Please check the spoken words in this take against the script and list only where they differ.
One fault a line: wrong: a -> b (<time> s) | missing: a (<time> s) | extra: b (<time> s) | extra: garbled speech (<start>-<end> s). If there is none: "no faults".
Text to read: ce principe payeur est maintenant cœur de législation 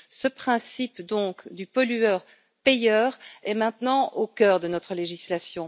extra: du pollueur (1.5 s)
extra: au (4.1 s)
extra: notre (4.7 s)